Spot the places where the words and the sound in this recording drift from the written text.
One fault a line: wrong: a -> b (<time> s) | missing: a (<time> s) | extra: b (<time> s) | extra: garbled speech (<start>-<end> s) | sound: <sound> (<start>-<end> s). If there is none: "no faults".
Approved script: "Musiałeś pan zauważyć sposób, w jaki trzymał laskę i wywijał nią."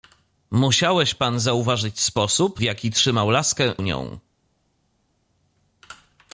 missing: w (2.6 s)
missing: i wywijał (3.7 s)